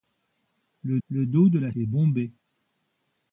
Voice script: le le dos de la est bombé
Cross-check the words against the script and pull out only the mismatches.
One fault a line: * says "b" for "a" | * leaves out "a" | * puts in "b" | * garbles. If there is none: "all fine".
all fine